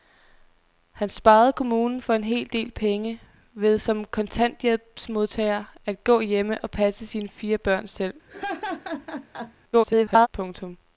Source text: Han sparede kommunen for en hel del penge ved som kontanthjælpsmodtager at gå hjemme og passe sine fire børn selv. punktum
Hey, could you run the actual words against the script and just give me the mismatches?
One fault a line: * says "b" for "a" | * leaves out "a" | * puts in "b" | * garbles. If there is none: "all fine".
* garbles